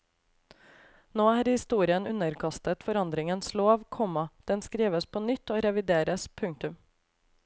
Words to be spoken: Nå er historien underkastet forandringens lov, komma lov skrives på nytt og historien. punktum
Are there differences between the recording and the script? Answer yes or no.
yes